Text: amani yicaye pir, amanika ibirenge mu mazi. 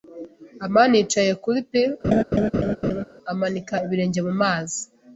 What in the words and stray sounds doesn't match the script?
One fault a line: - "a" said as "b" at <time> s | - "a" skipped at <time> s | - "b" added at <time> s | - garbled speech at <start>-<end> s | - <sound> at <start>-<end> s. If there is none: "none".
- "kuri" added at 1.4 s
- laugh at 2.0-3.0 s